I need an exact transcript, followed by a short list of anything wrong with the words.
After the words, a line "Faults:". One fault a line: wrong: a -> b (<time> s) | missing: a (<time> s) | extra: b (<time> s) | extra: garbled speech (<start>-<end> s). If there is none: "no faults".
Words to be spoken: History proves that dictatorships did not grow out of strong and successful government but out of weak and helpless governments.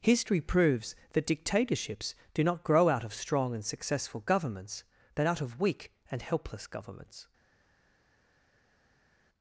History proves that dictatorships do not grow out of strong and successful governments but out of weak and helpless governments.
Faults:
wrong: did -> do (2.3 s)
wrong: government -> governments (4.2 s)